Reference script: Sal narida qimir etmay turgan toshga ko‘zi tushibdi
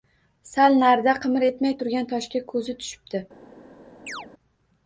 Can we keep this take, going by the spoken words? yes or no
yes